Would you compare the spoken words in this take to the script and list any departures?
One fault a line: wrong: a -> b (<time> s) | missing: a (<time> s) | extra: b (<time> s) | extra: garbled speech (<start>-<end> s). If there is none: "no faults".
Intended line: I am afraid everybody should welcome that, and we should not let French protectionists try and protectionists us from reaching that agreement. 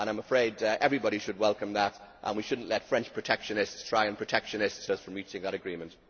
no faults